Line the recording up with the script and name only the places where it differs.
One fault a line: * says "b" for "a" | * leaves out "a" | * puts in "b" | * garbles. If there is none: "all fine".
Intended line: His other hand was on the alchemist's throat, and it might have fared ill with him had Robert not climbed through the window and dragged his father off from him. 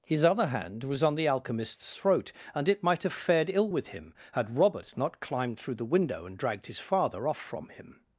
all fine